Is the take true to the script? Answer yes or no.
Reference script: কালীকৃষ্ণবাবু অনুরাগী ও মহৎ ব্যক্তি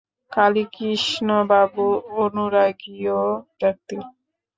no